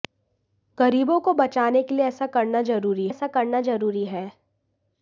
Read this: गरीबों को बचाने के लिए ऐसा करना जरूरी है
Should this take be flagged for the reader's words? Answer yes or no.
yes